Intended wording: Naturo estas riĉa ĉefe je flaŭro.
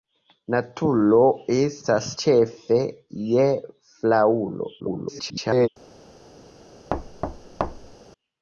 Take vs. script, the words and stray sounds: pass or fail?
fail